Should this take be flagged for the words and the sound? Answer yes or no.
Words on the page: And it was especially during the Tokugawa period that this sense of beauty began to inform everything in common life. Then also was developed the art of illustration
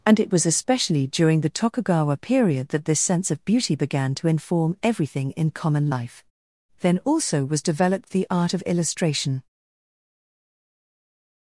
no